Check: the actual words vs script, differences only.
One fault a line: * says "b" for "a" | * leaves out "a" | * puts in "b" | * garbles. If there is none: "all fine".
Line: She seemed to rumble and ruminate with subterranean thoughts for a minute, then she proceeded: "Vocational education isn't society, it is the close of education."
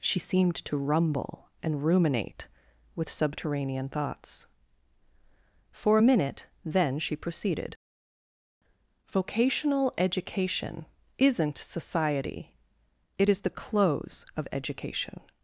all fine